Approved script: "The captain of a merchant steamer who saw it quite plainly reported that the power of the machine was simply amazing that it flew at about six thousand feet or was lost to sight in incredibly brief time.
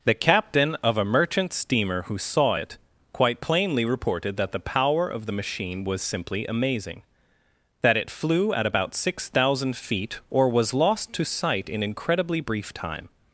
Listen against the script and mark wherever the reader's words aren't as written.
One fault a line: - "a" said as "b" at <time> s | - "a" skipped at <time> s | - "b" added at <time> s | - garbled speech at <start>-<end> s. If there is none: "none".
none